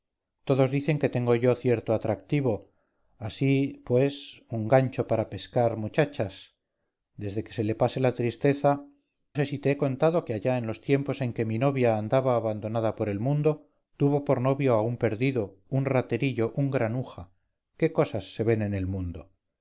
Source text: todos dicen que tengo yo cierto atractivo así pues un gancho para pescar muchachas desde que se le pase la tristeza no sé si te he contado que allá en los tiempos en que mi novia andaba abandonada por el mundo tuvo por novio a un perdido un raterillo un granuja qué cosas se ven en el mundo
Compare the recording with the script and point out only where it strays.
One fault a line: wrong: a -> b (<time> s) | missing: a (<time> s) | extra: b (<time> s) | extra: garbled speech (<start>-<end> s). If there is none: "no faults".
missing: no (8.8 s)